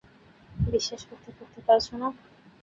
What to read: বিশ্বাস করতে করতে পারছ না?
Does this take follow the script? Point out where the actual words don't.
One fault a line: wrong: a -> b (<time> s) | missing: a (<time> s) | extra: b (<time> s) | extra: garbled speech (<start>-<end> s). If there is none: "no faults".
no faults